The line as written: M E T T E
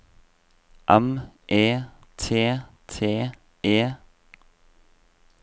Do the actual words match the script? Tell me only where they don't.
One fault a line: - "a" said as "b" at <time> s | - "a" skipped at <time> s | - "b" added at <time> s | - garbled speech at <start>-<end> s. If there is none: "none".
none